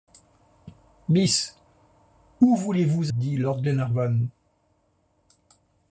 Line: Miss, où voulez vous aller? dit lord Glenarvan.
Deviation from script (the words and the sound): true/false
true